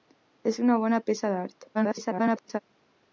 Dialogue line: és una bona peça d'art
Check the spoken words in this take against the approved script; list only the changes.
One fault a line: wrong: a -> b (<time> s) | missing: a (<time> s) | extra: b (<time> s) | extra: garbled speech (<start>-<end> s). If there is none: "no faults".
extra: garbled speech (1.7-2.6 s)